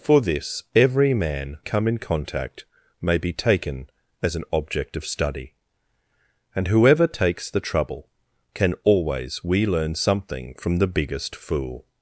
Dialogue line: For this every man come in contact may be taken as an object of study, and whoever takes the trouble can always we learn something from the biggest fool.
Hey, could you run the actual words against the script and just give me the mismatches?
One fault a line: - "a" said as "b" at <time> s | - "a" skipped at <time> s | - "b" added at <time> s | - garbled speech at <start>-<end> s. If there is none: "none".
none